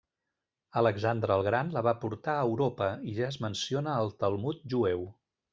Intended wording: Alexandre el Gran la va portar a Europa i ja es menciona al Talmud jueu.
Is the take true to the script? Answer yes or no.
yes